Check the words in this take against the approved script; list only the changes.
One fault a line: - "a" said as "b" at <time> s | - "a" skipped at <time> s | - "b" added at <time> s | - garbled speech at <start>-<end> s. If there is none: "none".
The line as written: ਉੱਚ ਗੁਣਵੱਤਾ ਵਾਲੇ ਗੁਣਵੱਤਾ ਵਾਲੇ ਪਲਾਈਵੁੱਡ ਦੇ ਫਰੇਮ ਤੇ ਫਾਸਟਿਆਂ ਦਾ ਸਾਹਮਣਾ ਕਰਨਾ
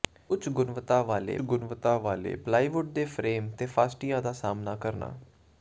none